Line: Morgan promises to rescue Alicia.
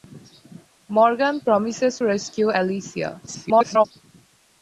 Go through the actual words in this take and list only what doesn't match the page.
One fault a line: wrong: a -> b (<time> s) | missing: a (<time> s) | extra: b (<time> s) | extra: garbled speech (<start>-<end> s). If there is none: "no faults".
missing: to (2.0 s)
extra: garbled speech (3.3-3.8 s)